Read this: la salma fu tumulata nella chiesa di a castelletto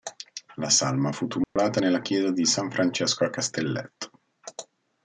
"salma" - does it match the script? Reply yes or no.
yes